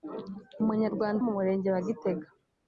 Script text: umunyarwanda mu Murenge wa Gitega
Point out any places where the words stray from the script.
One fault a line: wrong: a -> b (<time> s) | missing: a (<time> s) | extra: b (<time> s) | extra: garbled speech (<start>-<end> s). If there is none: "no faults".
no faults